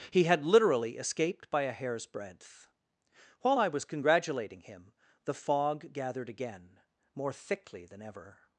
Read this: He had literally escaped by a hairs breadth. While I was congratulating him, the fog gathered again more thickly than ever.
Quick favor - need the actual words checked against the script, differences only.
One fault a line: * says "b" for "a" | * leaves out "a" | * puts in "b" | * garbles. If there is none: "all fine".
all fine